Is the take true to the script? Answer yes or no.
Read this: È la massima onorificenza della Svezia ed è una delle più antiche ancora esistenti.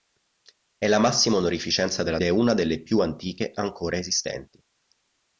no